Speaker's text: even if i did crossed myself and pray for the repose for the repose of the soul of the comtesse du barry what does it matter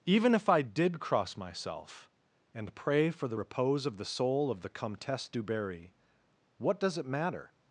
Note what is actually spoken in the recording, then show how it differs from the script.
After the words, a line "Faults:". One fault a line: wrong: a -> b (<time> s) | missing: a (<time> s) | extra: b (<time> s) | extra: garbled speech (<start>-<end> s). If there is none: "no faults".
even if i did cross myself and pray for the repose of the soul of the comtesse du barry what does it matter
Faults:
wrong: crossed -> cross (1.0 s)
missing: for the repose (3.9 s)